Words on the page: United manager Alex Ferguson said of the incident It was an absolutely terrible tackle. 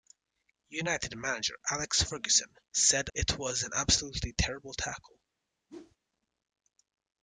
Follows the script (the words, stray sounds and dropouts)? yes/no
no